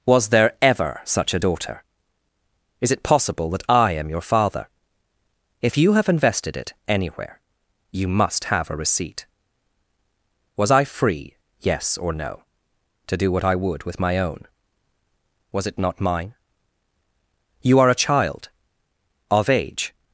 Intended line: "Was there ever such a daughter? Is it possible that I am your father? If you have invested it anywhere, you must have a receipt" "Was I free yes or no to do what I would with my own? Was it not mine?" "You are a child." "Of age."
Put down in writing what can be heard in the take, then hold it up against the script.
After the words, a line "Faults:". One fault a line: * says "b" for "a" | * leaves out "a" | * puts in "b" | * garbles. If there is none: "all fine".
"Was there ever such a daughter? Is it possible that I am your father? If you have invested it anywhere, you must have a receipt" "Was I free yes or no to do what I would with my own? Was it not mine?" "You are a child." "Of age."
Faults:
all fine